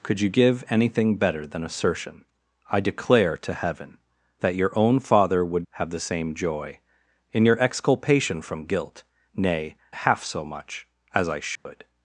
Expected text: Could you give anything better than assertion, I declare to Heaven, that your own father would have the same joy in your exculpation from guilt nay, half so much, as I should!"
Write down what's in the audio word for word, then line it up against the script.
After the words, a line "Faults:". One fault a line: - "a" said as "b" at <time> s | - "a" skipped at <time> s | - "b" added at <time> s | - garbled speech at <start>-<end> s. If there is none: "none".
Could you give anything better than assertion, I declare to Heaven, that your own father would have the same joy in your exculpation from guilt nay, half so much, as I should!"
Faults:
none